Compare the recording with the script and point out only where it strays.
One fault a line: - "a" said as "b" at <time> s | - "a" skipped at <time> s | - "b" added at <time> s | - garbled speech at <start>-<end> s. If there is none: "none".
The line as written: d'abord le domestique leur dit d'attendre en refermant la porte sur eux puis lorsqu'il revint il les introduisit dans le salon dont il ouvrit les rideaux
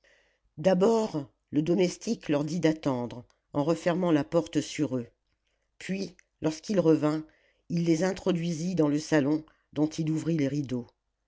none